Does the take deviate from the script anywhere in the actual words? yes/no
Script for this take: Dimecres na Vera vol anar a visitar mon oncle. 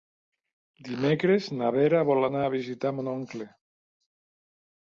no